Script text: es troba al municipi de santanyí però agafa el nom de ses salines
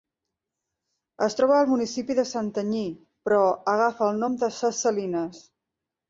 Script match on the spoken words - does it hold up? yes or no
yes